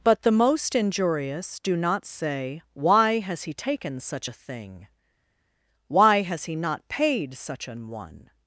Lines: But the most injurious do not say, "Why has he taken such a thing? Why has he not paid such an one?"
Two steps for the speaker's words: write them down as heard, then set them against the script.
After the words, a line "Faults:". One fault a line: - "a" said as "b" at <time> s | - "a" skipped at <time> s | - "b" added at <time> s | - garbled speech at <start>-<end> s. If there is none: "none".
But the most injurious do not say, "Why has he taken such a thing? Why has he not paid such an one?"
Faults:
none